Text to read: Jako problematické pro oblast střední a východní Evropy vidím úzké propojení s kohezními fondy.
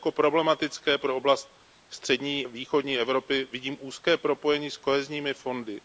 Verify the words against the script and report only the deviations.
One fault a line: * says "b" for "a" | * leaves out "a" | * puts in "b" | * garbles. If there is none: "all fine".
* leaves out "a"